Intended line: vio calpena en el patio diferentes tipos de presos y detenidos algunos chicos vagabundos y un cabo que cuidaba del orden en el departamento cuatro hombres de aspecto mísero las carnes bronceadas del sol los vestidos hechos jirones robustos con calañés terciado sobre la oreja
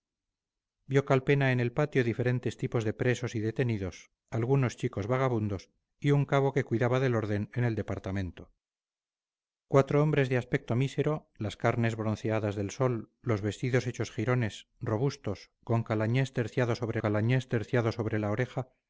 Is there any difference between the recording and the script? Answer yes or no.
yes